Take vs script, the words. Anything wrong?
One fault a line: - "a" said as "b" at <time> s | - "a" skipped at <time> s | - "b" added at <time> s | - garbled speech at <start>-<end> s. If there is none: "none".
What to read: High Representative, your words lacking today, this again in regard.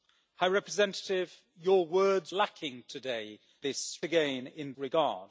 none